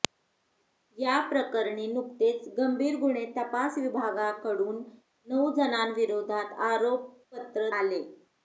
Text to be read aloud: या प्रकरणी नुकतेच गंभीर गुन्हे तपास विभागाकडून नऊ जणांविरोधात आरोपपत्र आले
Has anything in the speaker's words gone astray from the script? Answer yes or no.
no